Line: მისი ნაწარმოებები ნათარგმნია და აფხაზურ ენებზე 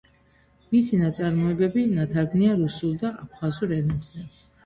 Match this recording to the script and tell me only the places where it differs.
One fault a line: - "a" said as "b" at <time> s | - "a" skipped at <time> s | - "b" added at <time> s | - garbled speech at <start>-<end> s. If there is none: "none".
- "რუსულ" added at 2.6 s